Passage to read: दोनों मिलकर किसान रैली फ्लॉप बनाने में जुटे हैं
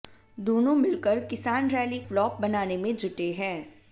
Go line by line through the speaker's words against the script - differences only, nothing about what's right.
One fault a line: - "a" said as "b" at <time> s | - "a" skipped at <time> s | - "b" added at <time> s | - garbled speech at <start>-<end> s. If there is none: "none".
none